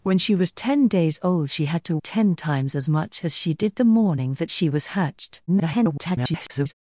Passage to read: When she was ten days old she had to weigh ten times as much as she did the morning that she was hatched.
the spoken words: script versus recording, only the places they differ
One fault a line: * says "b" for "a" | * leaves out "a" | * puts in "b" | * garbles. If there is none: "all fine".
* leaves out "weigh"
* garbles